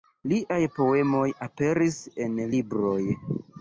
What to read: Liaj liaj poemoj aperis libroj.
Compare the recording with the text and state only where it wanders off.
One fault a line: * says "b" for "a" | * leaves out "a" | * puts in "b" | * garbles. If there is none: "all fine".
* leaves out "liaj"
* puts in "en"